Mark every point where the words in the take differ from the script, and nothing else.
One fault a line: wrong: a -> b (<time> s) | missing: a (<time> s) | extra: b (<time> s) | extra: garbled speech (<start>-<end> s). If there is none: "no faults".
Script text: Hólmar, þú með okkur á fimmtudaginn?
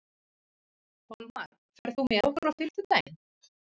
extra: ferð (1.8 s)